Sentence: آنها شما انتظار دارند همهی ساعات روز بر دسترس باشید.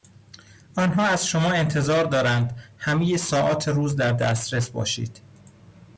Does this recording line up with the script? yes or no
no